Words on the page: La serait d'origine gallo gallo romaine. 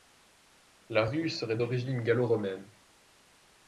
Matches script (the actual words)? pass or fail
fail